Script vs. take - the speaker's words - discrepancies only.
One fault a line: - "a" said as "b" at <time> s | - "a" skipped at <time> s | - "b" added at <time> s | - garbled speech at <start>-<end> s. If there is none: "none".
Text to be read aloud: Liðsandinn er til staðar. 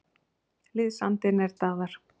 - "til" skipped at 1.5 s